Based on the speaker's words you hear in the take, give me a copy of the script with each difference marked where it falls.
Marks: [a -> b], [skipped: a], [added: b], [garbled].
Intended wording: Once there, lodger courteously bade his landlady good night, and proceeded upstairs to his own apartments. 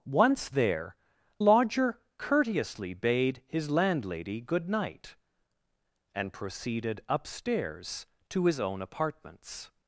Once there, lodger courteously bade his landlady good night, and proceeded upstairs to his own apartments.